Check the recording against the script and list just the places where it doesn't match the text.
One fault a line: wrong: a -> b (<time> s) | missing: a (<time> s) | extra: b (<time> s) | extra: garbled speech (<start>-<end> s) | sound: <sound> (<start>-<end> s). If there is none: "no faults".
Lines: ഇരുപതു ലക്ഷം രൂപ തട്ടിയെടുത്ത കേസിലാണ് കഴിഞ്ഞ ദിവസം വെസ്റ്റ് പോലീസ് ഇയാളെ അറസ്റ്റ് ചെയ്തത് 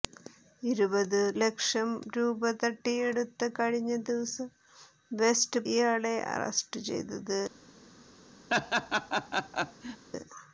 missing: കേസിലാണ് (3.5 s)
missing: പോലീസ് (5.6 s)
sound: laugh (8.5-10.1 s)